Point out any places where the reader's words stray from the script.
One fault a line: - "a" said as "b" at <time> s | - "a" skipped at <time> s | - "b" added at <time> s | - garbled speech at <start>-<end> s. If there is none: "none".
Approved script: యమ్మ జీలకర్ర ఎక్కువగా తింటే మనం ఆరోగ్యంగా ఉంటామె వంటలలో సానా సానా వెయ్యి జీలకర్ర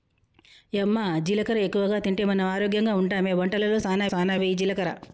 none